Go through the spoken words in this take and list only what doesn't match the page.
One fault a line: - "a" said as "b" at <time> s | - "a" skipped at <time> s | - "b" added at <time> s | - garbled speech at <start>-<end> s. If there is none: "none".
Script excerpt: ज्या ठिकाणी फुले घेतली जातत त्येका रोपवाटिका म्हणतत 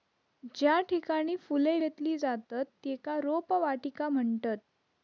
none